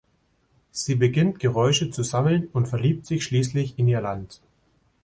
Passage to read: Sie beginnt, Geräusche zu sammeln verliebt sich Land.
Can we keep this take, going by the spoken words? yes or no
no